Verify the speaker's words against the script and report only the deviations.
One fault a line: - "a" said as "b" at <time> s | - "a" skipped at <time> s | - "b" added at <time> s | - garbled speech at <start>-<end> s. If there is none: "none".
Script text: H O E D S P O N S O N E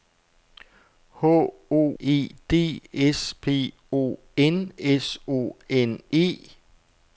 none